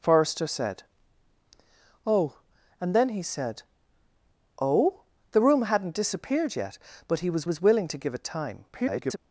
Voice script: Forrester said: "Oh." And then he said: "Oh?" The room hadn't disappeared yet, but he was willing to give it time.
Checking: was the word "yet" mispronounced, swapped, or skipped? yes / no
no